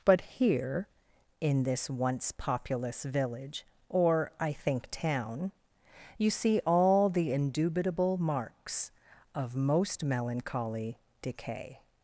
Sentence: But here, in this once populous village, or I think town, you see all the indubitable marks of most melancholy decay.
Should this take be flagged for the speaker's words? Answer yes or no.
no